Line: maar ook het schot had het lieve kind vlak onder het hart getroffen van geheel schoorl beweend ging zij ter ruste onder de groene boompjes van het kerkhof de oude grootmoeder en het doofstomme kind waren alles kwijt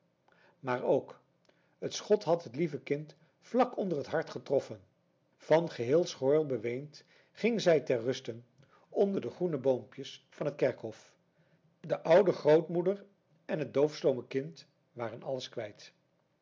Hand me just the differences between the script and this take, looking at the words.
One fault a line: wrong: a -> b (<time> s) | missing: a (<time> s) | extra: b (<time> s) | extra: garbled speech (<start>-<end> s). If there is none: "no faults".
no faults